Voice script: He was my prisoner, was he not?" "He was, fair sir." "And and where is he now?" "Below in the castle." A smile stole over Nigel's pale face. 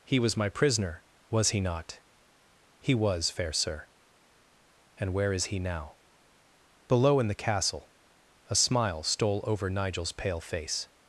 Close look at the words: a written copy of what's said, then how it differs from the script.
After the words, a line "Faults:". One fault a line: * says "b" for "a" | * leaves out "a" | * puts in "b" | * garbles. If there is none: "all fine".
He was my prisoner, was he not?" "He was, fair sir." "And where is he now?" "Below in the castle." A smile stole over Nigel's pale face.
Faults:
* leaves out "and"